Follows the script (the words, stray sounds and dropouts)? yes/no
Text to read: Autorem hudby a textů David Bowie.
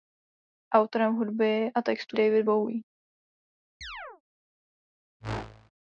no